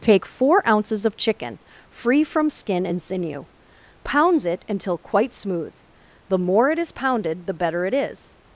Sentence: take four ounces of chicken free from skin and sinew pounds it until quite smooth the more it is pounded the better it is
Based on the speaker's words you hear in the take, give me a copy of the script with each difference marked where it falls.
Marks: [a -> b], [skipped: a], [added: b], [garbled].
take four ounces of chicken free from skin and sinew pounds it until quite smooth the more it is pounded the better it is